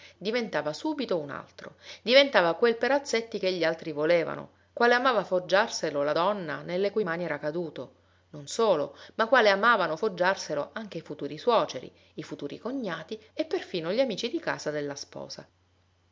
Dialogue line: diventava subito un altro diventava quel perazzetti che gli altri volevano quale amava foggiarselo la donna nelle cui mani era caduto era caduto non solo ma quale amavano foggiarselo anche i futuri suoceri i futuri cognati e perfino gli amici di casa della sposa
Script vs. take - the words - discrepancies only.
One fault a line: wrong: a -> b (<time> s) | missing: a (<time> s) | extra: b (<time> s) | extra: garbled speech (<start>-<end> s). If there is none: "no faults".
missing: era caduto (7.9 s)